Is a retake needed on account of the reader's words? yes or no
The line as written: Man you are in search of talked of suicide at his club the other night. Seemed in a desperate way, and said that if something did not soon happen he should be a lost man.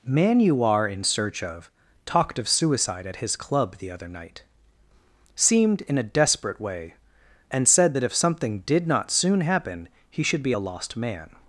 no